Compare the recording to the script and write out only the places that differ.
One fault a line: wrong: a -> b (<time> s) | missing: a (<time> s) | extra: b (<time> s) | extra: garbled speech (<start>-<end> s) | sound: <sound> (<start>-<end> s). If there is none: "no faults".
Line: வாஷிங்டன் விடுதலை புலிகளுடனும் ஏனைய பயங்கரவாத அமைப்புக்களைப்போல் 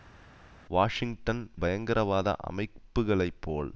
missing: விடுதலை புலிகளுடனும் ஏனைய (1.5 s)